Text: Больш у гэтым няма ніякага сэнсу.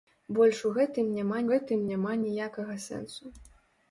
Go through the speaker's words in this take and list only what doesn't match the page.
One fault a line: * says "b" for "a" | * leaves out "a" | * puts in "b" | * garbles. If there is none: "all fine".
* puts in "гэтым няма"